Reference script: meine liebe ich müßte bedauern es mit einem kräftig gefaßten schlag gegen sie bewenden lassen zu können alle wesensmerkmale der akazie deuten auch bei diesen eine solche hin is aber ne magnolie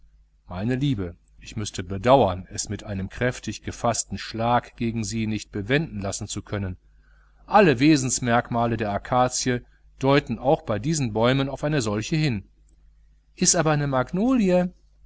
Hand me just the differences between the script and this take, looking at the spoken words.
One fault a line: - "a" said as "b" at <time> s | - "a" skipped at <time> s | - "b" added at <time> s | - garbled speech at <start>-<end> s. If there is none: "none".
- "nicht" added at 5.3 s
- "bäumen auf" added at 11.1 s